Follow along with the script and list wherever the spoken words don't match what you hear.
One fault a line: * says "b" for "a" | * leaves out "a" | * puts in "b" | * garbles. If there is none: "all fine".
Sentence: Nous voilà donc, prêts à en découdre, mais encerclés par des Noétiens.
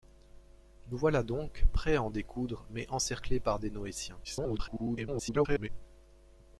* garbles